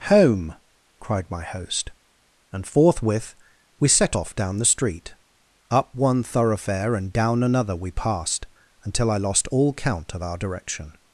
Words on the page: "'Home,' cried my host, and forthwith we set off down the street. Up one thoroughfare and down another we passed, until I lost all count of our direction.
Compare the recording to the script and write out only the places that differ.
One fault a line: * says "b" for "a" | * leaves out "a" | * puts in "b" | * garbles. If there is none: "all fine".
all fine